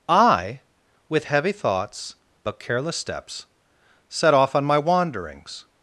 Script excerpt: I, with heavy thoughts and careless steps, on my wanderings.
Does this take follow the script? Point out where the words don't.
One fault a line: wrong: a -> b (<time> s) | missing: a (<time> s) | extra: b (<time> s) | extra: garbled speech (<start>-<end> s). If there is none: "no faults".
wrong: and -> but (2.4 s)
extra: set off (4.1 s)